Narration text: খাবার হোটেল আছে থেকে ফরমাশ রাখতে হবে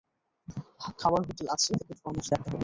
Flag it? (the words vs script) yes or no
no